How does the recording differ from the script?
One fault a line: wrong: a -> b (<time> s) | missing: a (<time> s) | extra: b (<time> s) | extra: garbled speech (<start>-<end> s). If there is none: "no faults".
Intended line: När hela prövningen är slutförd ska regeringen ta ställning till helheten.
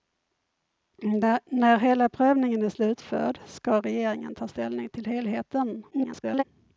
extra: garbled speech (5.9-6.4 s)